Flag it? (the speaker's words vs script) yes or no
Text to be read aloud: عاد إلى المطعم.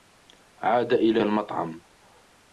no